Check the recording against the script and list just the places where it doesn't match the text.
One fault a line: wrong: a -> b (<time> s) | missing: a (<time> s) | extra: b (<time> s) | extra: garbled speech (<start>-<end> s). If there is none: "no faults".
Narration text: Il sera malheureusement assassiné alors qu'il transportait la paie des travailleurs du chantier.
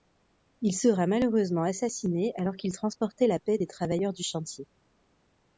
no faults